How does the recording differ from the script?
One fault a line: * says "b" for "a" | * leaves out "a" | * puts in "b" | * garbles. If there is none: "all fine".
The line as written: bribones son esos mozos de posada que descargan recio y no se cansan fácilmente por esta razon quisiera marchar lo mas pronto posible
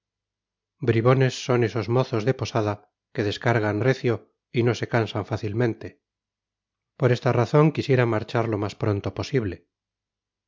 all fine